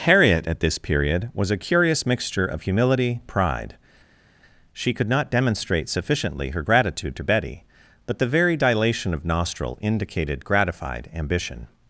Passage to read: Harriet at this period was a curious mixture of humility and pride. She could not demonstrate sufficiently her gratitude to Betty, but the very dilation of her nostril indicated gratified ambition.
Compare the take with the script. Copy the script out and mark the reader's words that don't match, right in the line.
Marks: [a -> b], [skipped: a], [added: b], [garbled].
Harriet at this period was a curious mixture of humility [skipped: and] pride. She could not demonstrate sufficiently her gratitude to Betty, but the very dilation of [skipped: her] nostril indicated gratified ambition.